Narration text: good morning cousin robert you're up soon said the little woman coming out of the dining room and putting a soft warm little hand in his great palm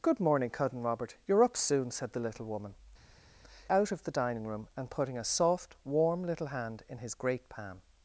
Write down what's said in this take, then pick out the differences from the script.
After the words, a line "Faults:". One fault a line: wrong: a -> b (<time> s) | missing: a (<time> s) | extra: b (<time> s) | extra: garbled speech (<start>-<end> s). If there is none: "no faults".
good morning cousin robert you're up soon said the little woman out of the dining room and putting a soft warm little hand in his great palm
Faults:
missing: coming (2.7 s)